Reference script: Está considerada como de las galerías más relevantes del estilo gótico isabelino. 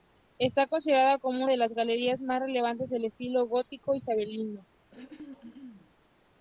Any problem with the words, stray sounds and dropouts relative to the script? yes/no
yes